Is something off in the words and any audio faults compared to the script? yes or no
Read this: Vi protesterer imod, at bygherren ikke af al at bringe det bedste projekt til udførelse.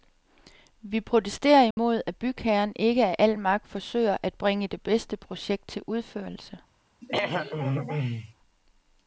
yes